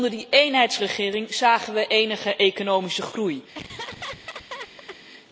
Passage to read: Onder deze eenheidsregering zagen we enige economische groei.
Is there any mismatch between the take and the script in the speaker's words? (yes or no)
yes